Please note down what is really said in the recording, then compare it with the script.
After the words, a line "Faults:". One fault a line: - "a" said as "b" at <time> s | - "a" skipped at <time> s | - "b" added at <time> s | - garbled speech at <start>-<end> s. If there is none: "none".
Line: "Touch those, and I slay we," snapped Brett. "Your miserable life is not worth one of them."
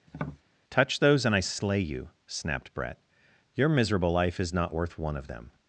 "Touch those, and I slay you," snapped Brett. "Your miserable life is not worth one of them."
Faults:
- "we" said as "you" at 1.8 s